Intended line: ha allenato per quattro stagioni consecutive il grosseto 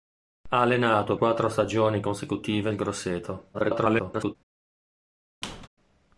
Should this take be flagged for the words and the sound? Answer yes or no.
yes